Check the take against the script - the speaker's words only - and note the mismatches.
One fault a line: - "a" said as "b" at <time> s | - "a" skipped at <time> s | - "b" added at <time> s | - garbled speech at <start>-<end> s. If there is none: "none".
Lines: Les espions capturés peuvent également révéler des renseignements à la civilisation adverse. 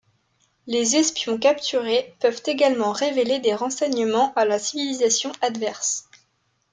none